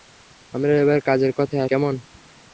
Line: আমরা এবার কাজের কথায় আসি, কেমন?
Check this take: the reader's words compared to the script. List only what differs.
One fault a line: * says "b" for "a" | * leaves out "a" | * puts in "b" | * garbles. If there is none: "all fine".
* leaves out "আসি"